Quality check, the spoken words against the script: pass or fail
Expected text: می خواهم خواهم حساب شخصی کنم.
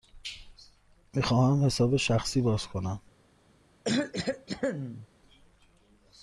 fail